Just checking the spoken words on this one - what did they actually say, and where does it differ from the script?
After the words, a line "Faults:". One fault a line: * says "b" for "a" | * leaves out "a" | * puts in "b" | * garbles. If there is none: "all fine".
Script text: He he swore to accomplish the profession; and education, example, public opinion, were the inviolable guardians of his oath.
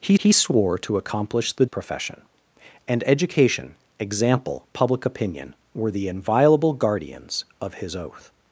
He he swore to accomplish the profession; and education, example, public opinion, were the inviolable guardians of his oath.
Faults:
all fine